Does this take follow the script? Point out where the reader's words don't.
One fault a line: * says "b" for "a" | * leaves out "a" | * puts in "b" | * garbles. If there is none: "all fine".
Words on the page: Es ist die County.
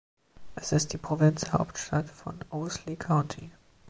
* puts in "Provinzhauptstadt von Owsley"